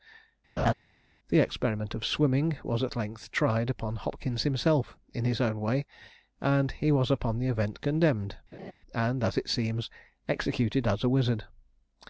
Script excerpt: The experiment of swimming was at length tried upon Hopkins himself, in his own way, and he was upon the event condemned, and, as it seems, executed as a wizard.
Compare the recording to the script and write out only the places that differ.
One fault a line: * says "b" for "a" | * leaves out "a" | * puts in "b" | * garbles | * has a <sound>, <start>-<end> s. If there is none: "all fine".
* has a laugh, 0.6-0.7 s
* has a laugh, 8.5-8.7 s